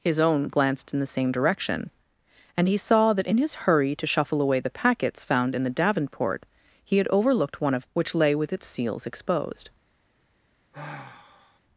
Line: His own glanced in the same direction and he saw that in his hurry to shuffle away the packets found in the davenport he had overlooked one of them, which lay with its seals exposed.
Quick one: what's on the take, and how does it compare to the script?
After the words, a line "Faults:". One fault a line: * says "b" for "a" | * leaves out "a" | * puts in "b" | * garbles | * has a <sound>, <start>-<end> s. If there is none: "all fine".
His own glanced in the same direction and he saw that in his hurry to shuffle away the packets found in the davenport he had overlooked one of which lay with its seals exposed.
Faults:
* leaves out "them"
* has a sigh, 10.7-11.6 s